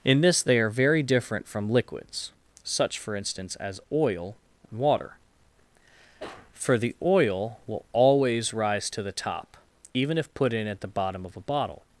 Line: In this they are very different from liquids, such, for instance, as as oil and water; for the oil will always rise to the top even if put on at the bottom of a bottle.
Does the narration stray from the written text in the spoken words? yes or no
yes